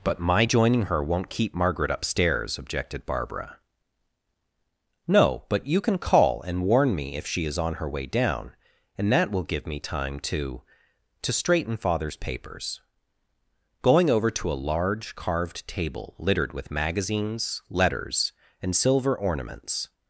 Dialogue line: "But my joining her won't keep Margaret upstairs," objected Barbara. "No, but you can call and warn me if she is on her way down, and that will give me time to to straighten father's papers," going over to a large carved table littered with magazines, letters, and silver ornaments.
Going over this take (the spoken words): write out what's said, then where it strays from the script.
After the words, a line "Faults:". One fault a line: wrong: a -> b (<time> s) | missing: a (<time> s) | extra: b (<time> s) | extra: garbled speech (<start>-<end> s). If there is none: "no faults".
"But my joining her won't keep Margaret upstairs," objected Barbara. "No, but you can call and warn me if she is on her way down, and that will give me time to to straighten father's papers," going over to a large carved table littered with magazines, letters, and silver ornaments.
Faults:
no faults